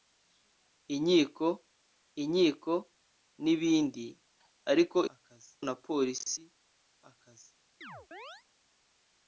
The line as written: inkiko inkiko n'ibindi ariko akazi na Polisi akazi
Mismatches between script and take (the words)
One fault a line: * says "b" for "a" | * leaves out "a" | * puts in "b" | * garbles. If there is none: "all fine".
all fine